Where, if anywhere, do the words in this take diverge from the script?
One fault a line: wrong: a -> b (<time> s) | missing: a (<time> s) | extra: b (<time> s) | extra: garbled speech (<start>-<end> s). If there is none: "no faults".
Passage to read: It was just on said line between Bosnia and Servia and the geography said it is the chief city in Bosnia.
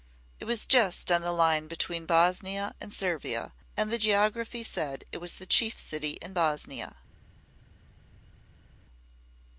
wrong: said -> the (1.2 s)
wrong: is -> was (5.2 s)